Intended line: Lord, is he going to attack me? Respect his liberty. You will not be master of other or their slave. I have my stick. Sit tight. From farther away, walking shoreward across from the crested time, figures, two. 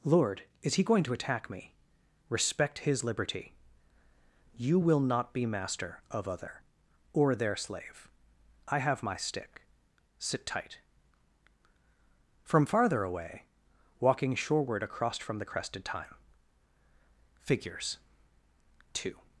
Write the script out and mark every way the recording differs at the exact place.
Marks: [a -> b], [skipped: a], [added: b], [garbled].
Lord, is he going to attack me? Respect his liberty. You will not be master of other or their slave. I have my stick. Sit tight. From farther away, walking shoreward across from the crested time, figures, two.